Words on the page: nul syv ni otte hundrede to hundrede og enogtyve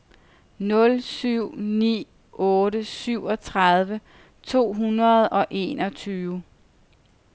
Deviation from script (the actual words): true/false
true